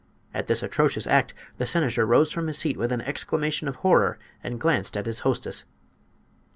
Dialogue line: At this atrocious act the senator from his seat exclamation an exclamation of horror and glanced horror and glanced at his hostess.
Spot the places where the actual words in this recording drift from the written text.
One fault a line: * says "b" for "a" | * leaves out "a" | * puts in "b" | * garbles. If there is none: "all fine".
* puts in "rose"
* says "with" for "exclamation"
* leaves out "horror and glanced"